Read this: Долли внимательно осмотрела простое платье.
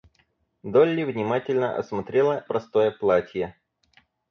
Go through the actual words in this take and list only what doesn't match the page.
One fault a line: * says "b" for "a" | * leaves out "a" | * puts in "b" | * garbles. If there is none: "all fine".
all fine